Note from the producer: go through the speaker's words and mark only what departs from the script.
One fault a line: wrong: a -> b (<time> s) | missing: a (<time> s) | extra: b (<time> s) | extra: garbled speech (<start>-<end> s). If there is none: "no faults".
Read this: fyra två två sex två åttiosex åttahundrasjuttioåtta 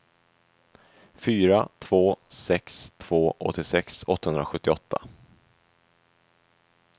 missing: två (2.2 s)